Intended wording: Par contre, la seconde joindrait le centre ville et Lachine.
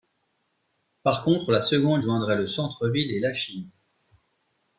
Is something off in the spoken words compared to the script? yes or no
no